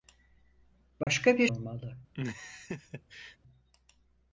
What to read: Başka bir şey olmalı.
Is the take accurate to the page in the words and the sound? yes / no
no